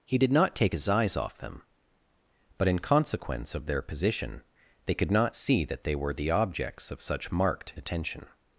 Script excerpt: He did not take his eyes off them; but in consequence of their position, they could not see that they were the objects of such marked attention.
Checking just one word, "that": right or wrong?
right